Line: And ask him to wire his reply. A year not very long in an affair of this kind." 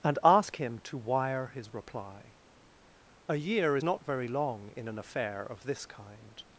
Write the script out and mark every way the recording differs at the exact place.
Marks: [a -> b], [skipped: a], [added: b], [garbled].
And ask him to wire his reply. A year not very long in an affair of this kind."